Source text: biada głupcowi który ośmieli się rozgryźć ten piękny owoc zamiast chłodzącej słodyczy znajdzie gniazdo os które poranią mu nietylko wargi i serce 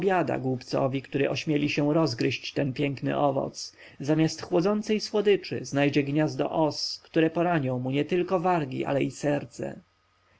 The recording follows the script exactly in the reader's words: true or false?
false